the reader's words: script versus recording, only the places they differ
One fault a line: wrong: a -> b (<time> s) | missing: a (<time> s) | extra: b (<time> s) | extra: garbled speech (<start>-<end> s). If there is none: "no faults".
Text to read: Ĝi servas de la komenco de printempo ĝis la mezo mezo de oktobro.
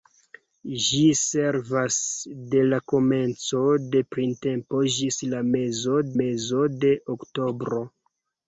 no faults